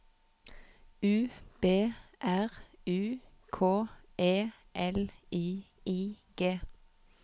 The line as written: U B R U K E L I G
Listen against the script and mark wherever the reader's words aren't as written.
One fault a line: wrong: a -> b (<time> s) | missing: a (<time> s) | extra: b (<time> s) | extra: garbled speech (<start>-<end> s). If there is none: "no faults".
extra: I (5.9 s)